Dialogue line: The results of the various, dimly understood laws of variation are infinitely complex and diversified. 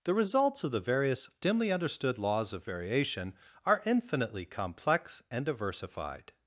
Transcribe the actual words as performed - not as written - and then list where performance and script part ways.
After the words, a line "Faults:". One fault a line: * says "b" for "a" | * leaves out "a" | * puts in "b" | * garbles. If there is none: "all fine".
The results of the various, dimly understood laws of variation are infinitely complex and diversified.
Faults:
all fine